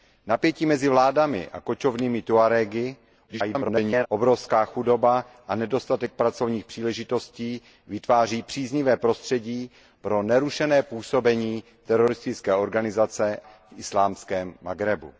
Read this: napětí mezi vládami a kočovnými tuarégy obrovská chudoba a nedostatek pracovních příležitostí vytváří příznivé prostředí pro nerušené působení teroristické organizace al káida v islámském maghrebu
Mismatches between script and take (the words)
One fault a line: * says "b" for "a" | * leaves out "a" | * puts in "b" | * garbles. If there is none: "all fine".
* garbles
* leaves out "al káida"